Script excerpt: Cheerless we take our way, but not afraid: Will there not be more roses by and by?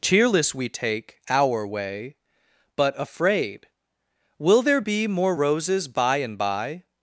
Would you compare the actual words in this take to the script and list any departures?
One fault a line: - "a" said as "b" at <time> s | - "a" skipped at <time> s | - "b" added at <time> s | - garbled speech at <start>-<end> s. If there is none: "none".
- "not" skipped at 3.0 s
- "not" skipped at 4.8 s